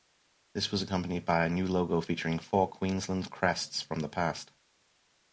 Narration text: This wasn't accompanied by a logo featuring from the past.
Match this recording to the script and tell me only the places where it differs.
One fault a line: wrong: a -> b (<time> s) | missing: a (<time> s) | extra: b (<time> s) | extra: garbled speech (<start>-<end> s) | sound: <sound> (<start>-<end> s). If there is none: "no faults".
wrong: wasn't -> was (0.7 s)
extra: new (1.5 s)
extra: four Queensland crests (2.4 s)